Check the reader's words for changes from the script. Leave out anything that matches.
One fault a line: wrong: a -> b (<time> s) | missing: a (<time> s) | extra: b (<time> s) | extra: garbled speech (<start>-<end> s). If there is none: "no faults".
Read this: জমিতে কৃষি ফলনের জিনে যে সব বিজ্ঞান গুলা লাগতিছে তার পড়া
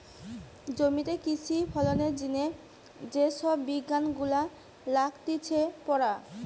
missing: তার (5.6 s)